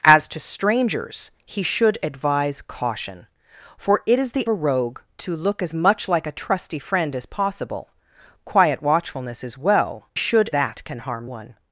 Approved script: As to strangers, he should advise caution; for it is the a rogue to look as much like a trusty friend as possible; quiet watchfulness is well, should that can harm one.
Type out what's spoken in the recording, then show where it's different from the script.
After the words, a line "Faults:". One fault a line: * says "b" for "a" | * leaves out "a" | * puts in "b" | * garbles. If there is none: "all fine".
As to strangers, he should advise caution; for it is the a rogue to look as much like a trusty friend as possible; quiet watchfulness is well, should that can harm one.
Faults:
all fine